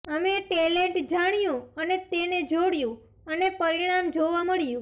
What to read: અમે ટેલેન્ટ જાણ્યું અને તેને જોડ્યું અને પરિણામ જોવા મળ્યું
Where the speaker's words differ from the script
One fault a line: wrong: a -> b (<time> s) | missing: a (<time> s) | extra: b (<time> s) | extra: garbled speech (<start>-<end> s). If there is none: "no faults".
no faults